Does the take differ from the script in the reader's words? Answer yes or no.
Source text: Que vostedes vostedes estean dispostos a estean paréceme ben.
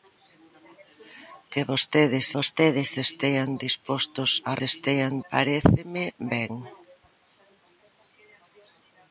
no